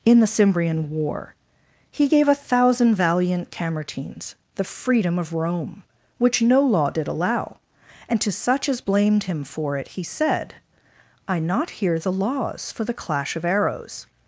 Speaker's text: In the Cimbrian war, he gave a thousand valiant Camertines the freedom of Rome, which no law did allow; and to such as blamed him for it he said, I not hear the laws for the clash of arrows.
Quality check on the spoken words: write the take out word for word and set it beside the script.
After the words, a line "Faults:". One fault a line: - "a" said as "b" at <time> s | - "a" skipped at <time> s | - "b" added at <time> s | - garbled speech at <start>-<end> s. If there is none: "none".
In the Cimbrian war, he gave a thousand valiant Camertines the freedom of Rome, which no law did allow; and to such as blamed him for it he said, I not hear the laws for the clash of arrows.
Faults:
none